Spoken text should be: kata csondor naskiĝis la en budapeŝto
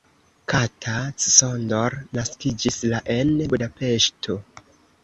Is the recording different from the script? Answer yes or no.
no